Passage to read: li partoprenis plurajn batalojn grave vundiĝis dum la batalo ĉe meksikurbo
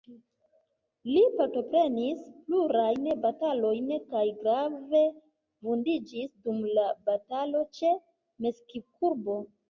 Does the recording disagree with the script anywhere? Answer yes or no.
yes